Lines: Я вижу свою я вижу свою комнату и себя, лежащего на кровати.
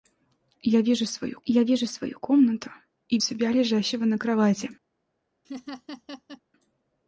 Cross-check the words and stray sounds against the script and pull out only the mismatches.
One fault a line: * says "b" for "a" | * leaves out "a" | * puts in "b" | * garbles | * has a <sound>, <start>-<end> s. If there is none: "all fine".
* has a laugh, 5.4-6.4 s